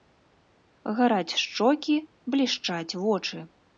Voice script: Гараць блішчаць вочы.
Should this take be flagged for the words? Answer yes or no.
yes